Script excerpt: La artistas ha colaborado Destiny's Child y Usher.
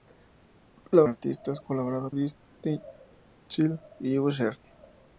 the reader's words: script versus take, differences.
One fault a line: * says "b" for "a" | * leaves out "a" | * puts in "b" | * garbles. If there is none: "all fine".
all fine